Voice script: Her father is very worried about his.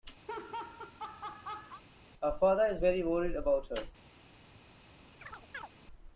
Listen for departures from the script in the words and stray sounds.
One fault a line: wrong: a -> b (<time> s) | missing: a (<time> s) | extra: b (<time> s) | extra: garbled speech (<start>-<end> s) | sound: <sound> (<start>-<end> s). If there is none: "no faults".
sound: laugh (0.3-1.8 s)
wrong: his -> her (3.7 s)
sound: chirp (5.2-5.7 s)